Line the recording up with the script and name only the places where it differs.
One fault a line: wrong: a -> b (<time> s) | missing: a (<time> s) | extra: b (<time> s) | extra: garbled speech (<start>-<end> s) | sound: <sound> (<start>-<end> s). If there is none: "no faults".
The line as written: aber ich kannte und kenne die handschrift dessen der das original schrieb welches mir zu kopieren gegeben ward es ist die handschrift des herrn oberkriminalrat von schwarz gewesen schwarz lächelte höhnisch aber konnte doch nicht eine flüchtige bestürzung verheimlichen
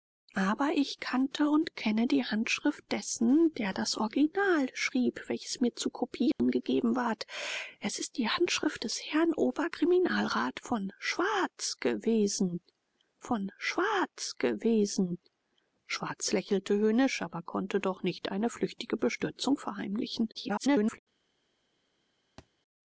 sound: dropout (6.3-6.4 s)
extra: von schwarz gewesen (13.2 s)
extra: garbled speech (20.3-21.0 s)
sound: thud (22.4-22.5 s)